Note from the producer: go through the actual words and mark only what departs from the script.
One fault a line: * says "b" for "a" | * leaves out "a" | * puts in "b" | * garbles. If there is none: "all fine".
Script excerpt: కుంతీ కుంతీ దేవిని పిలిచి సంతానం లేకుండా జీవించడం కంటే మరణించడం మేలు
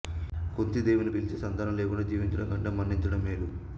* leaves out "కుంతీ"